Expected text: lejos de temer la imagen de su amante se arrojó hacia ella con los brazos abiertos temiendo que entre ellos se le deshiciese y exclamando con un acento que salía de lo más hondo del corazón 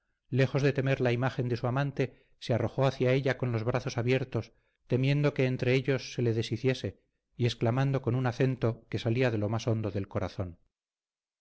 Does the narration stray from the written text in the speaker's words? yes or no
no